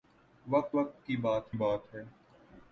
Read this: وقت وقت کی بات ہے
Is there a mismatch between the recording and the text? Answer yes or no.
yes